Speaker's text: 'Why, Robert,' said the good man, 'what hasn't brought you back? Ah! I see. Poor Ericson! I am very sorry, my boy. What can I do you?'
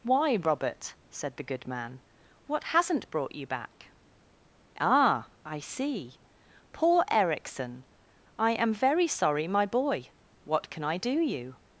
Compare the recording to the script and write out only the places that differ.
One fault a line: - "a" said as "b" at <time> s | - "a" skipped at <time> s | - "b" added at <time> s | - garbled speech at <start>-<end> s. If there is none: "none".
none